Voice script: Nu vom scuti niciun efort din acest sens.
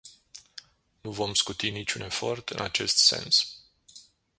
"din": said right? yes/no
no